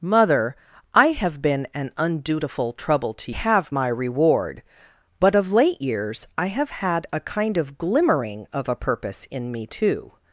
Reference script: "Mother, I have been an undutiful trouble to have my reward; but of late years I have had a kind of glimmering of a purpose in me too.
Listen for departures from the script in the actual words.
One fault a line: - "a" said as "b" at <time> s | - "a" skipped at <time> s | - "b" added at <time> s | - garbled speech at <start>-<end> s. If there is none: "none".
none